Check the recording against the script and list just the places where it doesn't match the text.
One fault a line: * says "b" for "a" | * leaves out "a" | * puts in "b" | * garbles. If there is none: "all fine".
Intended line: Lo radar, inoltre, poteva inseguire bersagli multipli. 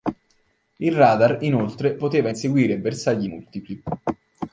* says "Il" for "Lo"